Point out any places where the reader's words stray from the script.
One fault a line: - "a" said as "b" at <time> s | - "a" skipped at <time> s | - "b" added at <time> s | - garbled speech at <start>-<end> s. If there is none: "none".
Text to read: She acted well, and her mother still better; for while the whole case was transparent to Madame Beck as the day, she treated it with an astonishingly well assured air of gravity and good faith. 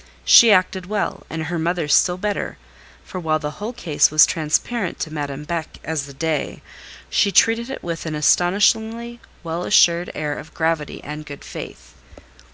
none